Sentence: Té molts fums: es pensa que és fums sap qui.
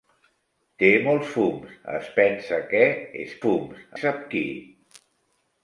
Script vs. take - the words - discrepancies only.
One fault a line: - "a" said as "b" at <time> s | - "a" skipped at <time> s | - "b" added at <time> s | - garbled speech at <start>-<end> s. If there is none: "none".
none